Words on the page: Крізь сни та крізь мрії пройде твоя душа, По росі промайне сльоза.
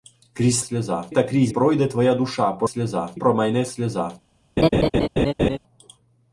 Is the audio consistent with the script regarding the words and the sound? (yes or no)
no